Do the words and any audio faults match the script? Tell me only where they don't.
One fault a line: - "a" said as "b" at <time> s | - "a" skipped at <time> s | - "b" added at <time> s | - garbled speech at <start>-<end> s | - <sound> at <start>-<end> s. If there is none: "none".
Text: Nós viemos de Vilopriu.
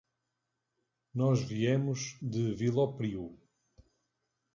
none